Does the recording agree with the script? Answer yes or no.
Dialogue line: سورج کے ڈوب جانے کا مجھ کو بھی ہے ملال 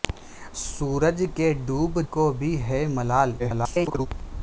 no